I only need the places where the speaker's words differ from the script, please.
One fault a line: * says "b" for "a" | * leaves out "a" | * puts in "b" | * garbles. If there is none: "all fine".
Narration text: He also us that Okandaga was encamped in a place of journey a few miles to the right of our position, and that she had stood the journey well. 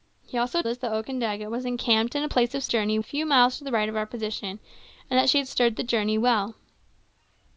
all fine